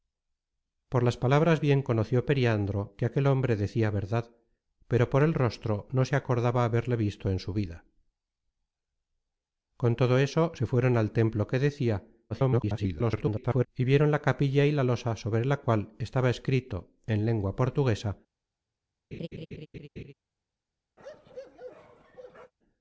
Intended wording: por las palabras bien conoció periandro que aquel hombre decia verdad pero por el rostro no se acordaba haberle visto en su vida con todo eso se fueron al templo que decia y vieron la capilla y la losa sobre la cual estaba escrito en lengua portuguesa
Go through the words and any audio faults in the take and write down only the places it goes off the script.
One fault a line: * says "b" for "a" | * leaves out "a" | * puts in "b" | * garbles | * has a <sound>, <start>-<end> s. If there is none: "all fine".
* garbles
* has a laugh, 19.1-20.1 s
* has a bark, 21.0-22.5 s